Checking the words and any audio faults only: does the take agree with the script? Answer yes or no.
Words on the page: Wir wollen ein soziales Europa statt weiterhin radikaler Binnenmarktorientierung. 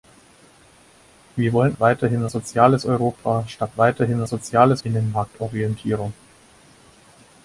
no